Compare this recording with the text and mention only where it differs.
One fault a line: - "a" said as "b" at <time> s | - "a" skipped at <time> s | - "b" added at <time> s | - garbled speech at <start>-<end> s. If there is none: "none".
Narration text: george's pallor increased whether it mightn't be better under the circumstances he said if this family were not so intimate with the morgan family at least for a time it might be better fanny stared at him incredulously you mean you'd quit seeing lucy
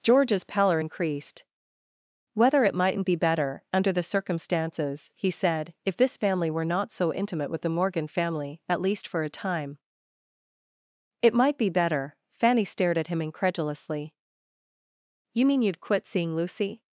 none